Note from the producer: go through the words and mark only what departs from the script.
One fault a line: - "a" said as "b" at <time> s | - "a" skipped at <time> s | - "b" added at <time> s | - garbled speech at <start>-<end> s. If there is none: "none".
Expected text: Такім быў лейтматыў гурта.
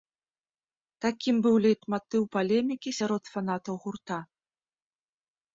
- "палемікі сярод фанатаў" added at 2.3 s